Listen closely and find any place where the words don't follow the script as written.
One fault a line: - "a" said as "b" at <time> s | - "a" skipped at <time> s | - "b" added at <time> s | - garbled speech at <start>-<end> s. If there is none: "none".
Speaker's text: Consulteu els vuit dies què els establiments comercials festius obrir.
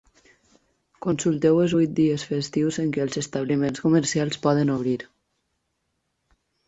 - "festius en" added at 2.3 s
- "festius" said as "poden" at 4.5 s